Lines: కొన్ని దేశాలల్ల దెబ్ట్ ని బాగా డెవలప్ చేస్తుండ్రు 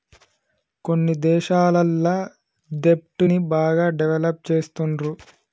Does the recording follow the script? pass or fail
pass